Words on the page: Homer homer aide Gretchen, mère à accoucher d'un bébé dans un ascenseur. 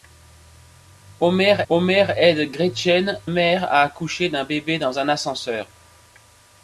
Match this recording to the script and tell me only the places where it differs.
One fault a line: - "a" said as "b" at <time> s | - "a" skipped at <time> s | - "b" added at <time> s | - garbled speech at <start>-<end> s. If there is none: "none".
none